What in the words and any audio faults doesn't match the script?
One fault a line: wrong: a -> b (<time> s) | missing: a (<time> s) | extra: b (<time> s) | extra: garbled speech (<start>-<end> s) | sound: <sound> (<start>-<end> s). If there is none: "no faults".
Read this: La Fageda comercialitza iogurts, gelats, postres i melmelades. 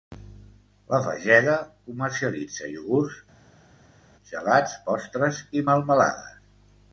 no faults